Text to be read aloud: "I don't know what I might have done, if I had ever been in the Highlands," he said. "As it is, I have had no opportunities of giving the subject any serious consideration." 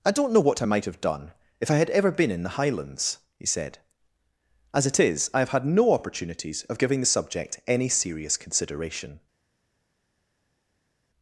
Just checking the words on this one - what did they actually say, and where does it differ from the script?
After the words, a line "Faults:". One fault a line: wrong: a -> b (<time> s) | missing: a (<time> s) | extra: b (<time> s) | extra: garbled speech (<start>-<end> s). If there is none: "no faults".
"I don't know what I might have done, if I had ever been in the Highlands," he said. "As it is, I have had no opportunities of giving the subject any serious consideration."
Faults:
no faults